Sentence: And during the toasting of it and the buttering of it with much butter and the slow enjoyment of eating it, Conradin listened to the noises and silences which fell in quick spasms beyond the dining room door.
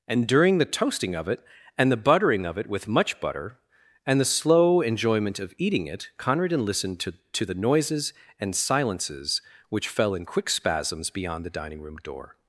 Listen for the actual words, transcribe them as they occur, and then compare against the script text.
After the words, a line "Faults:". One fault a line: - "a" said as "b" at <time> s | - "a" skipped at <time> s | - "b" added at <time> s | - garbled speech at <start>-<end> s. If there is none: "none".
And during the toasting of it and the buttering of it with much butter and the slow enjoyment of eating it, Conradin listened to to the noises and silences which fell in quick spasms beyond the dining room door.
Faults:
- "to" added at 7.3 s